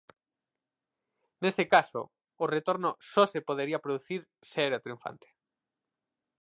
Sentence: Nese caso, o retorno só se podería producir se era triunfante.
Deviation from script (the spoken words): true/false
false